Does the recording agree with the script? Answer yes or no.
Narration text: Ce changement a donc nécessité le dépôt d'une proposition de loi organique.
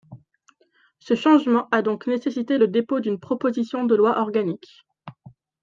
yes